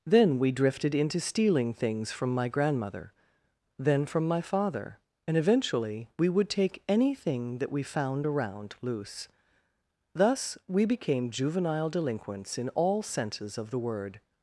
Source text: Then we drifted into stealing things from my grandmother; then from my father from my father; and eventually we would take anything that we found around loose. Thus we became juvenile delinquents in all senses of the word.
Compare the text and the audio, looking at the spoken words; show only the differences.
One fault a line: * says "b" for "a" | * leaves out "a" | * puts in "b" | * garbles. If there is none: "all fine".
* leaves out "from my father"